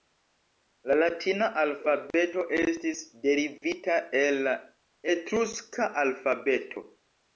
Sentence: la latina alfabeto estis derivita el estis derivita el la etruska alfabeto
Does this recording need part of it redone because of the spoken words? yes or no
yes